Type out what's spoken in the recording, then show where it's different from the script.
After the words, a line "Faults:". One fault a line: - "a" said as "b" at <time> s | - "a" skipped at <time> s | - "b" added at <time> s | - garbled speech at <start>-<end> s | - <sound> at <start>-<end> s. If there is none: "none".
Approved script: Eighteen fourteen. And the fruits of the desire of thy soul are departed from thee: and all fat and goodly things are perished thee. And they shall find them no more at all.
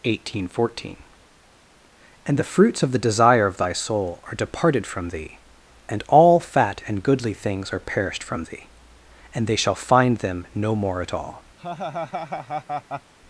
Eighteen fourteen. And the fruits of the desire of thy soul are departed from thee: and all fat and goodly things are perished from thee. And they shall find them no more at all.
Faults:
- "from" added at 8.2 s
- laugh at 11.6-13.1 s